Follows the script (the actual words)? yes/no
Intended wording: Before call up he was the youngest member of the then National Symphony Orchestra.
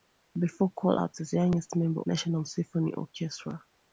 no